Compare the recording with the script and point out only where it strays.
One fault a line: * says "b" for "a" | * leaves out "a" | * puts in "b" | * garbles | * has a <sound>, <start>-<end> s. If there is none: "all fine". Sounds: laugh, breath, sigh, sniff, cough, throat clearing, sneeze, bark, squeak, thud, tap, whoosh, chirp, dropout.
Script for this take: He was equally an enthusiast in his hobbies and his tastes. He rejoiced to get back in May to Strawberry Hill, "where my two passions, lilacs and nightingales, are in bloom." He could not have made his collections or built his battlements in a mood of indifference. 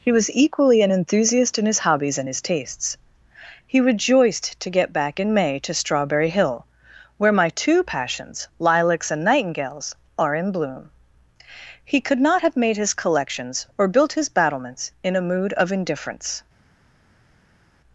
all fine